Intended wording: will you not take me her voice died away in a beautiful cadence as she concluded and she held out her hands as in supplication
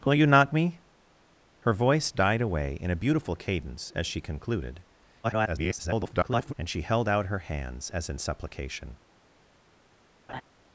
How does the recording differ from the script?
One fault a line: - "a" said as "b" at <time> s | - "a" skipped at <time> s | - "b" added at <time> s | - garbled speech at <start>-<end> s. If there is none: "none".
- "take" skipped at 0.5 s
- garbled speech at 5.2-6.5 s